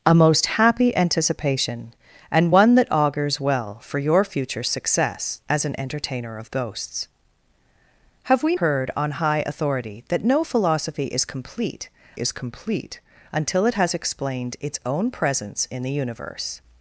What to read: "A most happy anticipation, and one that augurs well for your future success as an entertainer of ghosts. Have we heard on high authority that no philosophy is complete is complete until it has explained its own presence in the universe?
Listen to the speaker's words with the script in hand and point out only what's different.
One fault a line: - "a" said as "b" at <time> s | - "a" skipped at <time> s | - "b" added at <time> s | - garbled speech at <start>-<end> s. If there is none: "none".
none